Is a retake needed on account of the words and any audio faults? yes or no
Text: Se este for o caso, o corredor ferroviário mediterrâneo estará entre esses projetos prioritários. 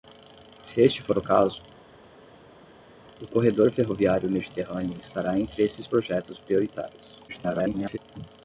yes